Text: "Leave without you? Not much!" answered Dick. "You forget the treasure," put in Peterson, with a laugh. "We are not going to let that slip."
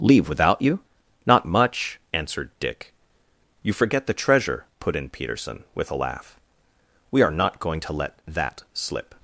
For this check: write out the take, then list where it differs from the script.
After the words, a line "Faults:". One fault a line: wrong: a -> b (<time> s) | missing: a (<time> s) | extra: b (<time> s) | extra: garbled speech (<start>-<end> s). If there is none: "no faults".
"Leave without you? Not much!" answered Dick. "You forget the treasure," put in Peterson, with a laugh. "We are not going to let that slip."
Faults:
no faults